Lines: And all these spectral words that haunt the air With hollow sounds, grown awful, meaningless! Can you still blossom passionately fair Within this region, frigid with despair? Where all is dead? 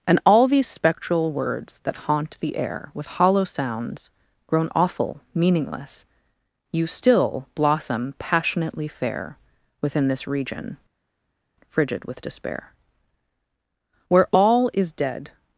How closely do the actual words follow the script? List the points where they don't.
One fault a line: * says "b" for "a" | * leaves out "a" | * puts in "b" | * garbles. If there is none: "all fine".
* leaves out "Can"